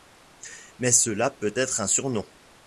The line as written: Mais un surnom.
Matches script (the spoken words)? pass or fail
fail